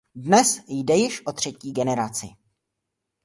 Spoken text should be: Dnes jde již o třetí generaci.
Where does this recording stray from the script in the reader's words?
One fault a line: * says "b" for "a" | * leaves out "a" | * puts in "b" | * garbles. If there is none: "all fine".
all fine